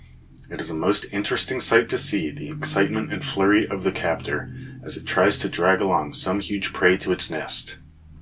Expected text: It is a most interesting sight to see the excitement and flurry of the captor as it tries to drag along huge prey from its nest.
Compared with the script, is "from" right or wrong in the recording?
wrong